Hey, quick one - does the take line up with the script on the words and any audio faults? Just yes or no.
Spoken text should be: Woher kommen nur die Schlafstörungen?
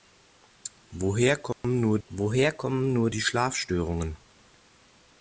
no